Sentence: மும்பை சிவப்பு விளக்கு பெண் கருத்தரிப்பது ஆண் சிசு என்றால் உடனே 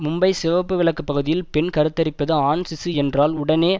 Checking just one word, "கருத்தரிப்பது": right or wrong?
right